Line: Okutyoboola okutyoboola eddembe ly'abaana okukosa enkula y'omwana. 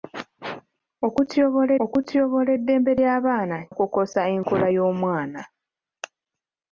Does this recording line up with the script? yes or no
yes